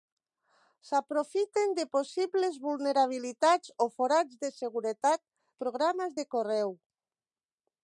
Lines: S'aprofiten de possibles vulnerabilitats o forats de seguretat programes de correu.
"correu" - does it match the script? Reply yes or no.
yes